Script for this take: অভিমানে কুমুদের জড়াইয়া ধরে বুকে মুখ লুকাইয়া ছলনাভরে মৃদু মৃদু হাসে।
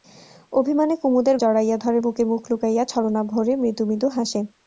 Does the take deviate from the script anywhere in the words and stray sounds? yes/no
no